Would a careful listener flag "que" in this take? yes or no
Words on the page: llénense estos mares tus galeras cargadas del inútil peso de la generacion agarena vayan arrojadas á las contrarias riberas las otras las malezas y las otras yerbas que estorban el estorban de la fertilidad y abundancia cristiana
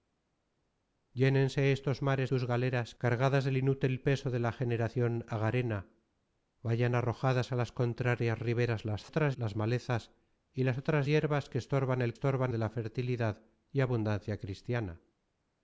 no